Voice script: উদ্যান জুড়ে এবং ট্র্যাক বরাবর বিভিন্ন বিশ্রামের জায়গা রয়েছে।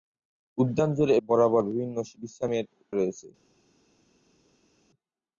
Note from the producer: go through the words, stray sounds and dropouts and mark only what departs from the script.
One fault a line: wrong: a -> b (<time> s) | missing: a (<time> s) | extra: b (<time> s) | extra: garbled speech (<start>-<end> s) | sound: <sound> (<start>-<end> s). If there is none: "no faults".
missing: এবং ট্র্যাক (1.1 s)
missing: জায়গা (2.6 s)